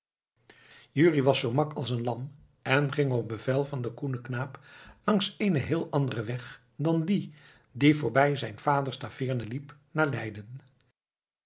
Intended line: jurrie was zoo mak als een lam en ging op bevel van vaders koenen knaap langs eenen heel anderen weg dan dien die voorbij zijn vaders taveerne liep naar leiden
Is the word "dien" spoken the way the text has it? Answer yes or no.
yes